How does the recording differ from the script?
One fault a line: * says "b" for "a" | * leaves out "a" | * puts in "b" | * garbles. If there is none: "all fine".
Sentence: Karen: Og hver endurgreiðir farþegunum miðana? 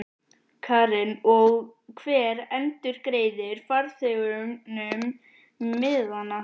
all fine